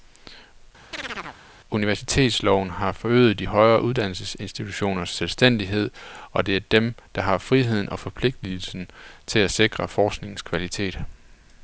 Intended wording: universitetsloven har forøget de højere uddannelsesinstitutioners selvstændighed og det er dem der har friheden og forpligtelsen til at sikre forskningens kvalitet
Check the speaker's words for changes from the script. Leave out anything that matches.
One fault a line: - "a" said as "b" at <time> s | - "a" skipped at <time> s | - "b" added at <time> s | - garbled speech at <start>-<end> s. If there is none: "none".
none